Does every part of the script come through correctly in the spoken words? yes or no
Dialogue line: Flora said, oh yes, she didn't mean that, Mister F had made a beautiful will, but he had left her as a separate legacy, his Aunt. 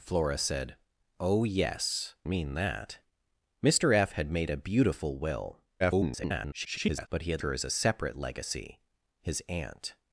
no